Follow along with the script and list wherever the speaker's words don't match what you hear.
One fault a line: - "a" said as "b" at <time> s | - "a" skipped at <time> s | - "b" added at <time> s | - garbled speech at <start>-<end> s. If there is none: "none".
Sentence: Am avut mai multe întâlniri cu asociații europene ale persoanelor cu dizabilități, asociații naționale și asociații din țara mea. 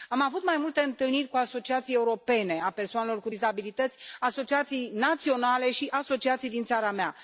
none